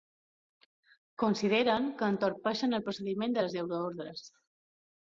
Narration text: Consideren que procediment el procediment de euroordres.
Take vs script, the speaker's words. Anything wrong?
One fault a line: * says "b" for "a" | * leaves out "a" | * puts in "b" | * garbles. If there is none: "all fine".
* says "entorpeixen" for "procediment"
* puts in "les"